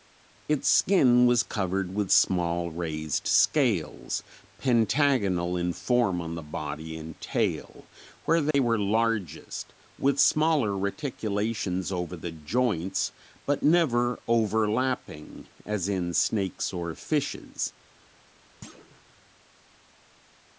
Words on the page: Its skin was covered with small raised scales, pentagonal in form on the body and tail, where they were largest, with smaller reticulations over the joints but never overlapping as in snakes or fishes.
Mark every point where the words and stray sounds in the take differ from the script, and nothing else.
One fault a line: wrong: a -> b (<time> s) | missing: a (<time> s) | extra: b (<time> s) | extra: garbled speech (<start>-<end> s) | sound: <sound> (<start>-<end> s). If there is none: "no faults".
sound: dropout (8.5-8.5 s)
sound: thud (18.6-19.0 s)